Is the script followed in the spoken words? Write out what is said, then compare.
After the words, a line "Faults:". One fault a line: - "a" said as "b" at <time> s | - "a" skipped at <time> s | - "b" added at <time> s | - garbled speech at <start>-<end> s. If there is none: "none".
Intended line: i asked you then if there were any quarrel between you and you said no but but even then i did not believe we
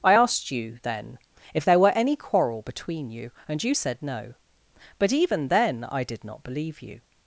i asked you then if there were any quarrel between you and you said no but even then i did not believe you
Faults:
- "but" skipped at 5.1 s
- "we" said as "you" at 6.8 s